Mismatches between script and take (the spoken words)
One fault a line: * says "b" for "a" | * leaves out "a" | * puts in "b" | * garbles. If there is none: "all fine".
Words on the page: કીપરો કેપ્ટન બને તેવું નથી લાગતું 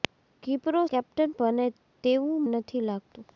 all fine